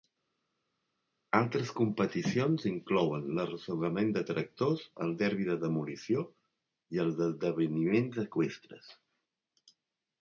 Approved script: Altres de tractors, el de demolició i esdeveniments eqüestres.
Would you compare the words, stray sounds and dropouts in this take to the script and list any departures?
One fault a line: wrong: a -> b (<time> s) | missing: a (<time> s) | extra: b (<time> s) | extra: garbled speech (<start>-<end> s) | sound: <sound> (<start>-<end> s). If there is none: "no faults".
extra: competicions inclouen l'arrossegament (1.8 s)
extra: derbi (5.2 s)
extra: els (7.1 s)